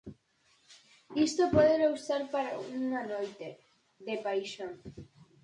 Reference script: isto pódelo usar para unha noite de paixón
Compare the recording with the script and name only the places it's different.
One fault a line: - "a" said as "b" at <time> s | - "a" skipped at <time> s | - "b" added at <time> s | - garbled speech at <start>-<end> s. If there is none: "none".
none